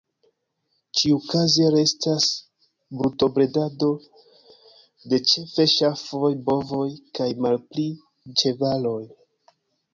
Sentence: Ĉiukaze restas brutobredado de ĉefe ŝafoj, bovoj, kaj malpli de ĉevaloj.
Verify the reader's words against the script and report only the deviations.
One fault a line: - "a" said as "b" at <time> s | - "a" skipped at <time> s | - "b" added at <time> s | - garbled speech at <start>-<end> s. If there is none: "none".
- "de" skipped at 7.9 s